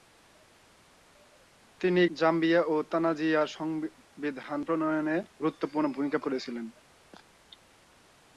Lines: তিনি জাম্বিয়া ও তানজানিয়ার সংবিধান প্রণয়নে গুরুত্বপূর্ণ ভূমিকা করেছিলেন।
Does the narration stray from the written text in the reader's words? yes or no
no